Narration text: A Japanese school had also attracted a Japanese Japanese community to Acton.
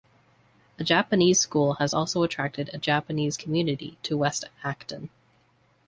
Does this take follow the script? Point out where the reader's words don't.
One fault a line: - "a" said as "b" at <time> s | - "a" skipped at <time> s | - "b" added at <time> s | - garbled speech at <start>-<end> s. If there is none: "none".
- "had" said as "has" at 1.8 s
- "Japanese" skipped at 3.4 s
- "West" added at 4.2 s